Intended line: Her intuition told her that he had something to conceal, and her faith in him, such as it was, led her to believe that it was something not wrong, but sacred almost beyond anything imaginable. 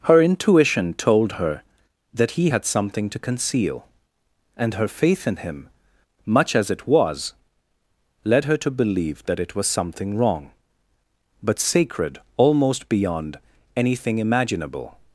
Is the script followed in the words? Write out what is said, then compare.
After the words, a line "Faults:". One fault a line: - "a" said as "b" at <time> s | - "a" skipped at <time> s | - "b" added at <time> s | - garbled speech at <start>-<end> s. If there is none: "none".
Her intuition told her that he had something to conceal, and her faith in him, much as it was, led her to believe that it was something wrong, but sacred almost beyond anything imaginable.
Faults:
- "such" said as "much" at 6.3 s
- "not" skipped at 10.2 s